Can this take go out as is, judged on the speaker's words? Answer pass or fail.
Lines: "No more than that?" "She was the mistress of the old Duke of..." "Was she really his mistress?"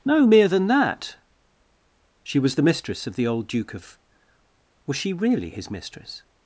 fail